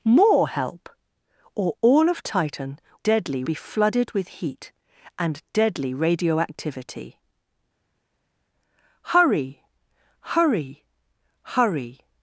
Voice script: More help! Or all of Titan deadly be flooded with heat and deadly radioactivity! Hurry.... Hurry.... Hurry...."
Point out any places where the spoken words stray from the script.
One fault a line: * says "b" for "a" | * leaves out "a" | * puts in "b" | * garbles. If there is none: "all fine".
all fine